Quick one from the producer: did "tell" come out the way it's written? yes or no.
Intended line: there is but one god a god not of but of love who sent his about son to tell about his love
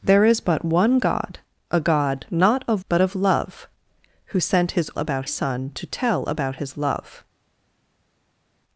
yes